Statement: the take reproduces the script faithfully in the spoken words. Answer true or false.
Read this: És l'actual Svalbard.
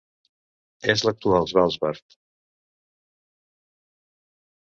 true